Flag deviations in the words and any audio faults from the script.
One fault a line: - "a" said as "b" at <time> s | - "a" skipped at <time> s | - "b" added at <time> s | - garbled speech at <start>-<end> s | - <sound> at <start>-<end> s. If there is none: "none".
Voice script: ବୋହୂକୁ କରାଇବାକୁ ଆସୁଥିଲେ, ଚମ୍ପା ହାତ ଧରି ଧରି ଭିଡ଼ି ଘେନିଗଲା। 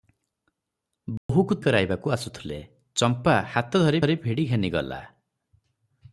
- dropout at 1.2-1.3 s